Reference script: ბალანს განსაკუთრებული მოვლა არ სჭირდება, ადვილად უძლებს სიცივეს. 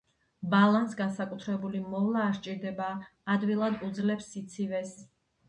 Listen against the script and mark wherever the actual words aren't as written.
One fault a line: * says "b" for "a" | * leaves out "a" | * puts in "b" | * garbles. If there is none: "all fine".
all fine